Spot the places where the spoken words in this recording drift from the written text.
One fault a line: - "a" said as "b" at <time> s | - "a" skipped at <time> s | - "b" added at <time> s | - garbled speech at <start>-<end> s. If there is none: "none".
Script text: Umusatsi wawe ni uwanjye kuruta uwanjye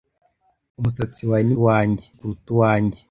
none